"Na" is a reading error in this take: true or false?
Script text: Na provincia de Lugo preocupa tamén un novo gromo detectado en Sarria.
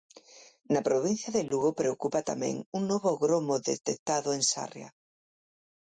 false